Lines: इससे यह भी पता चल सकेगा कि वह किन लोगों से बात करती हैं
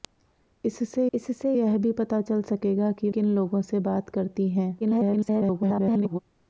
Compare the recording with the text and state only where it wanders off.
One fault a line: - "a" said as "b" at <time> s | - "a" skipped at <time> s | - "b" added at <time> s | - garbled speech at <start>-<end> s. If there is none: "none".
- "इससे" added at 1.1 s
- "वह" skipped at 3.1 s
- garbled speech at 4.8-6.2 s